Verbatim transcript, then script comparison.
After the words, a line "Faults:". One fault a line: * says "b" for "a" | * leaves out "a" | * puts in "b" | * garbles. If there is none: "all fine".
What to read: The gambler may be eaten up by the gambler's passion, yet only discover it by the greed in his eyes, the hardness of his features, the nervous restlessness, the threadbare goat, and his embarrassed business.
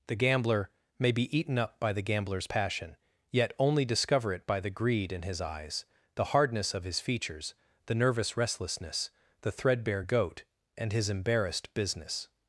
The gambler may be eaten up by the gambler's passion, yet only discover it by the greed in his eyes, the hardness of his features, the nervous restlessness, the threadbare goat, and his embarrassed business.
Faults:
all fine